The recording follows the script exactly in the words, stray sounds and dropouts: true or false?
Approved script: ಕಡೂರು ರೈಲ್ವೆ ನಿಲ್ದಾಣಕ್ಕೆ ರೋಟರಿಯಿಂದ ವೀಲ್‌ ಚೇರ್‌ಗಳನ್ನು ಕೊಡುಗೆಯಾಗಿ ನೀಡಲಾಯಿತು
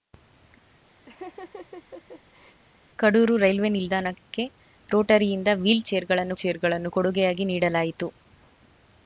false